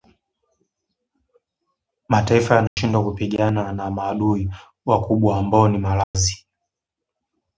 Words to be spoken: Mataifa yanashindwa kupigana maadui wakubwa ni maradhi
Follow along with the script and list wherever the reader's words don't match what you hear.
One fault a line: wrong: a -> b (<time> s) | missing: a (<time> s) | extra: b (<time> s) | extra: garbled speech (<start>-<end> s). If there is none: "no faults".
extra: na (3.7 s)
extra: ambao (5.4 s)